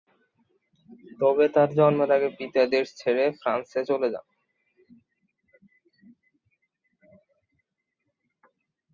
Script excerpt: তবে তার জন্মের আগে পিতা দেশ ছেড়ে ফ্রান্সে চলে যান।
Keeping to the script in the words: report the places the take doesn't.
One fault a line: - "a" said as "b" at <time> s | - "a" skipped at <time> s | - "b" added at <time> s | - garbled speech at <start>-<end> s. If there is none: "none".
none